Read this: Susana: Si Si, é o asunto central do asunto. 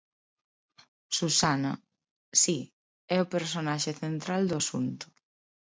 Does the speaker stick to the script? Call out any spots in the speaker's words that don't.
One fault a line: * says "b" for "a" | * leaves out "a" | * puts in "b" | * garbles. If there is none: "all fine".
* leaves out "Si"
* says "personaxe" for "asunto"